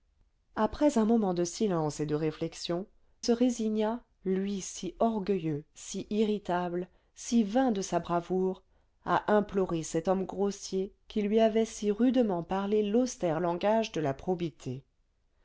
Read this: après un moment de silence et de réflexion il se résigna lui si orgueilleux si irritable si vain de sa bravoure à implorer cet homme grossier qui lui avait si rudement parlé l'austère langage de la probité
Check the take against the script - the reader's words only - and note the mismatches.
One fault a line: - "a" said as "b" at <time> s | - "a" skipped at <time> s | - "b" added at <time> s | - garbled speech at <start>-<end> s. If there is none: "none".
- "il" skipped at 2.9 s